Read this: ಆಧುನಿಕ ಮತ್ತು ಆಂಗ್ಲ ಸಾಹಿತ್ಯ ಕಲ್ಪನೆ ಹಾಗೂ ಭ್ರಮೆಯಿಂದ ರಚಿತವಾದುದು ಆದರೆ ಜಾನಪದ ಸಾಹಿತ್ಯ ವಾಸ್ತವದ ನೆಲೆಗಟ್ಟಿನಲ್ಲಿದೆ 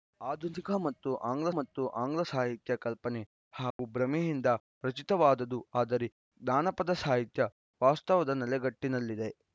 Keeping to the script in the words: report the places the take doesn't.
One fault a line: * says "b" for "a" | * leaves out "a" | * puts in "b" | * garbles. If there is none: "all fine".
* puts in "ಮತ್ತು ಆಂಗ್ಲ"